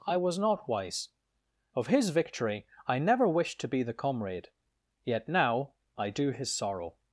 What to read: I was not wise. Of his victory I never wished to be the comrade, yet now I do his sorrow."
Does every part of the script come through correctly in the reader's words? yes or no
yes